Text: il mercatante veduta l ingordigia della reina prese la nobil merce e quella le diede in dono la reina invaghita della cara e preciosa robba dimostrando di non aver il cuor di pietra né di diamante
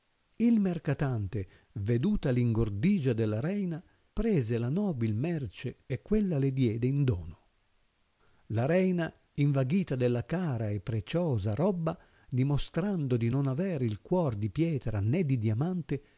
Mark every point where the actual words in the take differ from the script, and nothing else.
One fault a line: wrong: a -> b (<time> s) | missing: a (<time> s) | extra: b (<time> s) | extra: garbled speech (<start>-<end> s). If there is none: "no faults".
no faults